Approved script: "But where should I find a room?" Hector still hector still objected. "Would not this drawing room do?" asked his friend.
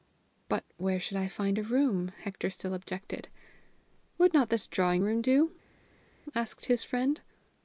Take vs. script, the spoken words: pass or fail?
fail